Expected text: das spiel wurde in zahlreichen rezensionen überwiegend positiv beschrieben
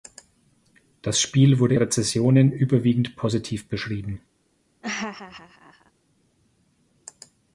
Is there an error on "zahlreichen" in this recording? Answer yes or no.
yes